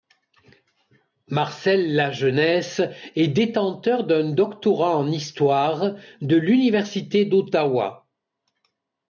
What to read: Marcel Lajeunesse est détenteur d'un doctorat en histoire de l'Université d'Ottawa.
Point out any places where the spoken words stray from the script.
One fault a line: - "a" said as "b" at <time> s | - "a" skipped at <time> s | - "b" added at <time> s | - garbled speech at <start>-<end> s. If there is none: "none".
none